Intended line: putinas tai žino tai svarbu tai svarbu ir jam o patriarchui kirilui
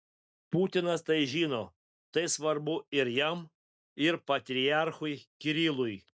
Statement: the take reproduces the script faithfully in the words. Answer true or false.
false